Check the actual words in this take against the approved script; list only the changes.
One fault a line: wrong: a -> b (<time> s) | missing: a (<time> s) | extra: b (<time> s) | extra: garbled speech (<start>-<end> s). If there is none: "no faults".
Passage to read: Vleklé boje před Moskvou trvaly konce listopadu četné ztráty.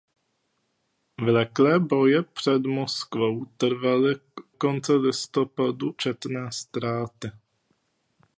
no faults